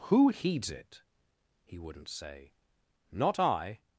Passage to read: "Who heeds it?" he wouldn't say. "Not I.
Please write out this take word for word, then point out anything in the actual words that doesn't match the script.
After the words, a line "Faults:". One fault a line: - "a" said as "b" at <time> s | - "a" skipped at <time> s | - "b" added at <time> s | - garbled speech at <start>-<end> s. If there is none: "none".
"Who heeds it?" he wouldn't say. "Not I.
Faults:
none